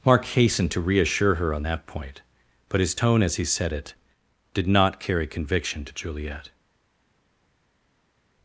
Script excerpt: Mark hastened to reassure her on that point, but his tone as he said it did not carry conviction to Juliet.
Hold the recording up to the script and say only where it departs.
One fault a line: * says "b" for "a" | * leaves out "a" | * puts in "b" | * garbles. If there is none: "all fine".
all fine